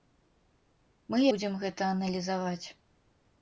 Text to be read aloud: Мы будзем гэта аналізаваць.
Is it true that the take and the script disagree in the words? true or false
false